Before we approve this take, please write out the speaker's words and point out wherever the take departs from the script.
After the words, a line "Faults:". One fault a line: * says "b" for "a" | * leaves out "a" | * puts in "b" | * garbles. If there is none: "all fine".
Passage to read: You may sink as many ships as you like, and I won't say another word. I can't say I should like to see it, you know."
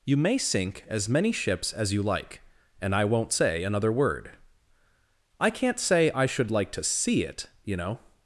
You may sink as many ships as you like, and I won't say another word. I can't say I should like to see it, you know."
Faults:
all fine